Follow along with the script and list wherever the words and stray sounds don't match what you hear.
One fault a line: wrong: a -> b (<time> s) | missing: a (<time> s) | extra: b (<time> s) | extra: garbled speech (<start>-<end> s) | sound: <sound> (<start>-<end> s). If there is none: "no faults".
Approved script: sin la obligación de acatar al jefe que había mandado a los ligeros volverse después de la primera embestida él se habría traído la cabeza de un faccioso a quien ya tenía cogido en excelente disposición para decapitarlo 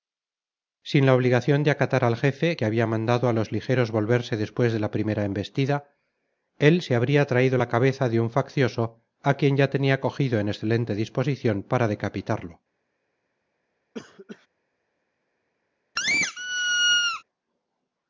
sound: cough (13.9-14.5 s)
sound: squeak (16.0-17.2 s)